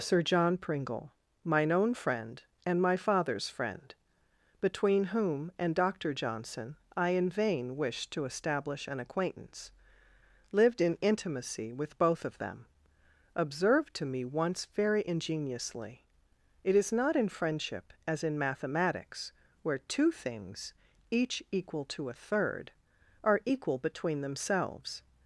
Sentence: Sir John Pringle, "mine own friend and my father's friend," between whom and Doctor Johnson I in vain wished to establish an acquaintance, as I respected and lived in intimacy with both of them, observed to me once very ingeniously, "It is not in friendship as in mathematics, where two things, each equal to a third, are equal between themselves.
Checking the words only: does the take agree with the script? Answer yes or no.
no